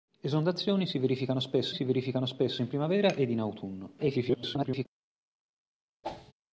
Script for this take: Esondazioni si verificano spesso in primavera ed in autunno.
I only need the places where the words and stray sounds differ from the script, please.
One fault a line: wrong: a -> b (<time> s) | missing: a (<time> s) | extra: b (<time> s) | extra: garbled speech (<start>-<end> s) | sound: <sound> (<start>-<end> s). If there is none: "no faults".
extra: si verificano spesso (1.7 s)
extra: garbled speech (4.0-4.9 s)
sound: whoosh (6.0-6.3 s)